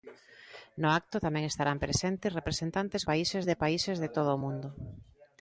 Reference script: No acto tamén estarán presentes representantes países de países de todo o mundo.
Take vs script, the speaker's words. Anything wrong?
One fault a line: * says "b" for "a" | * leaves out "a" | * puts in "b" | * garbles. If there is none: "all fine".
all fine